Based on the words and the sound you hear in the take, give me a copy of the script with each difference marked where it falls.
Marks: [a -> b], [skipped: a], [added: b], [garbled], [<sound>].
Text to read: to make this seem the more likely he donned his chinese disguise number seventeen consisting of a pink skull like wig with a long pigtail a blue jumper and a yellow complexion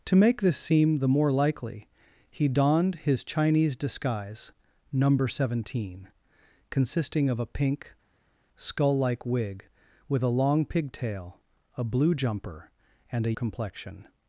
to make this seem the more likely he donned his chinese disguise number seventeen consisting of a pink skull like wig with a long pigtail a blue jumper and a [skipped: yellow] complexion